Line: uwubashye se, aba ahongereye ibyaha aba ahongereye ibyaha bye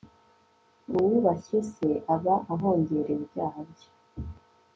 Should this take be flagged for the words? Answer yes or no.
yes